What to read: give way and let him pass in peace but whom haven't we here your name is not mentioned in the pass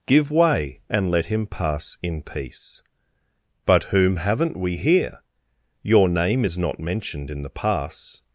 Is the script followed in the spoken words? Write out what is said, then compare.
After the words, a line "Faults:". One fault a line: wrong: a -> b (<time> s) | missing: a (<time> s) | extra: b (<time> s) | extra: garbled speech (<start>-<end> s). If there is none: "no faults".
give way and let him pass in peace but whom haven't we here your name is not mentioned in the pass
Faults:
no faults